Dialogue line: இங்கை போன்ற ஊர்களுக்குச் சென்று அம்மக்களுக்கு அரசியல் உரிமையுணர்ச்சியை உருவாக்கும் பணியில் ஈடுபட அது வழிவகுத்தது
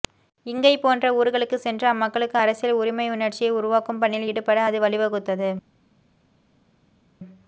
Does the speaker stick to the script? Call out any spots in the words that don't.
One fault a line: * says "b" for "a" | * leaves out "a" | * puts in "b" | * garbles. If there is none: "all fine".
all fine